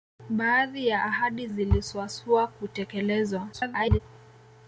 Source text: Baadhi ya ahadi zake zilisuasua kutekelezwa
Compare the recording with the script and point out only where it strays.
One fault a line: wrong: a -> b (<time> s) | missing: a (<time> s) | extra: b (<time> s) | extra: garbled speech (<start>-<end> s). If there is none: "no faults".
missing: zake (1.5 s)
extra: garbled speech (3.5-4.0 s)